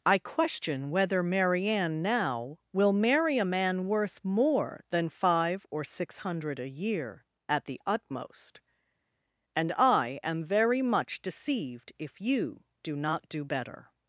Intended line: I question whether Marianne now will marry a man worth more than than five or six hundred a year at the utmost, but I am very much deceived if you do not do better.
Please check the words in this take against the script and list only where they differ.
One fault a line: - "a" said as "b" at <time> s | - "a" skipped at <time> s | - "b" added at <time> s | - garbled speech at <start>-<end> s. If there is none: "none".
- "than" skipped at 5.1 s
- "but" said as "and" at 9.6 s